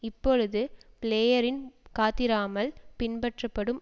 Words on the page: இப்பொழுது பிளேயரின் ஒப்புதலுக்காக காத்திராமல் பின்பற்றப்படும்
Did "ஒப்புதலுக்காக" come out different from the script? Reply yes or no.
yes